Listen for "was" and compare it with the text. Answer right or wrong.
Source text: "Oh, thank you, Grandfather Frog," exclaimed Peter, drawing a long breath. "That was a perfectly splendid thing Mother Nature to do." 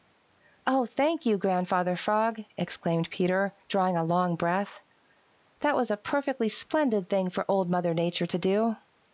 right